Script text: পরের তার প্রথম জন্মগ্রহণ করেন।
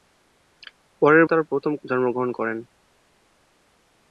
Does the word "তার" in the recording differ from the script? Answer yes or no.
no